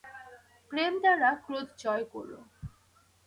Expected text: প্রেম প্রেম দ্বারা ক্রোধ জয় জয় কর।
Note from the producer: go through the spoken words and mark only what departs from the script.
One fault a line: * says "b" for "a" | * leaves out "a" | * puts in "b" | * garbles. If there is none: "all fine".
* leaves out "প্রেম"
* leaves out "জয়"